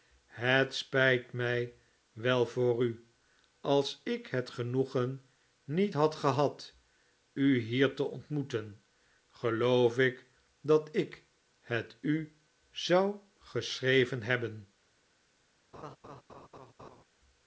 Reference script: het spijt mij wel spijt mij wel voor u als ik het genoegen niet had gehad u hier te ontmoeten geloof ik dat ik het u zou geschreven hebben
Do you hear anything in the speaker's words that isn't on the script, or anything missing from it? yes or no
yes